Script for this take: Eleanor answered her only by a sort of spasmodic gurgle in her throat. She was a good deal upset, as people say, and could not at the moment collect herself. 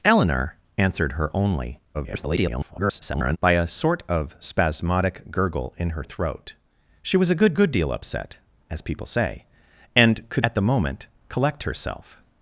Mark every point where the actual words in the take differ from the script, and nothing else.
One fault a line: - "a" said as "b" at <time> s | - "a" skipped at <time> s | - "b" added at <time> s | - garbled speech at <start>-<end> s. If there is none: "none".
- garbled speech at 1.9-3.4 s
- "good" added at 7.5 s
- "not" skipped at 10.5 s